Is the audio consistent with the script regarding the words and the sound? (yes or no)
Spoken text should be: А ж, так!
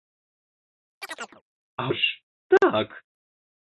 no